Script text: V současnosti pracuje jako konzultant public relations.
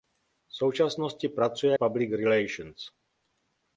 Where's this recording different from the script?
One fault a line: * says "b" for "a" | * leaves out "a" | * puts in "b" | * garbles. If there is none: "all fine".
* leaves out "jako konzultant"